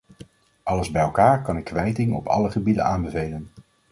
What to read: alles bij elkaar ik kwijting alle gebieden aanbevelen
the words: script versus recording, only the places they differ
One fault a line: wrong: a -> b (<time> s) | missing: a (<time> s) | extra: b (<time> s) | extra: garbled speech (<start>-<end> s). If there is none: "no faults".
extra: kan (1.4 s)
extra: op (2.1 s)